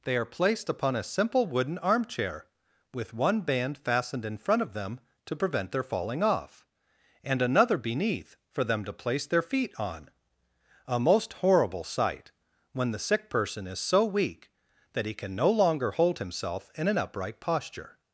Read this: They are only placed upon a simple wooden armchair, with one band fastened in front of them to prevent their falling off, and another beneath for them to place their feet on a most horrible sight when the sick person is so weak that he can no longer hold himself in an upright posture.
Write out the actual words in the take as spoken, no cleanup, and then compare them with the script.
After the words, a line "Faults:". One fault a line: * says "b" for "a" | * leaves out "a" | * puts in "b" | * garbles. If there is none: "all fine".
They are placed upon a simple wooden armchair, with one band fastened in front of them to prevent their falling off, and another beneath for them to place their feet on a most horrible sight when the sick person is so weak that he can no longer hold himself in an upright posture.
Faults:
* leaves out "only"